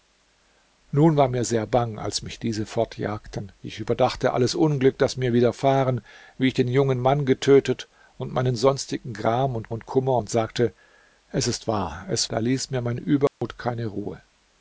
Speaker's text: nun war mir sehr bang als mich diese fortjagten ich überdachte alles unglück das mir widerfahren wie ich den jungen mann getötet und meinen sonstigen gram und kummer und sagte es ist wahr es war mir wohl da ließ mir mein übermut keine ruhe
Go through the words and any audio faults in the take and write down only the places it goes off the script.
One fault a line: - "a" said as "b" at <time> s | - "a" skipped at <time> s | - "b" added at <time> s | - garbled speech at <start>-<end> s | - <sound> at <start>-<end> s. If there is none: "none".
- "und" added at 9.7 s
- "war mir wohl" skipped at 12.3 s
- dropout at 13.3-13.4 s